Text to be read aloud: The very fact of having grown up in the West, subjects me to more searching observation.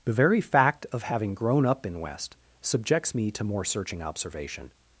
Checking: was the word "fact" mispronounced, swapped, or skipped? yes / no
no